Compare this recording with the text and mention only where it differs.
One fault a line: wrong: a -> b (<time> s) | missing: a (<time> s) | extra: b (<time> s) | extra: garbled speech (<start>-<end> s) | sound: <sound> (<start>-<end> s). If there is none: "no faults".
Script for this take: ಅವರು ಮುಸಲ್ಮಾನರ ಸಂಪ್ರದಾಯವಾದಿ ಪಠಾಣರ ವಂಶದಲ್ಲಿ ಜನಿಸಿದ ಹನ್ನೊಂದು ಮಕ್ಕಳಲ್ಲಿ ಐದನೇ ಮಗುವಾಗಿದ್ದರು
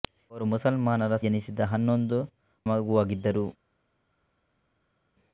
missing: ಸಂಪ್ರದಾಯವಾದಿ ಪಠಾಣರ ವಂಶದಲ್ಲಿ (1.1 s)
missing: ಮಕ್ಕಳಲ್ಲಿ ಐದನೇ (2.2 s)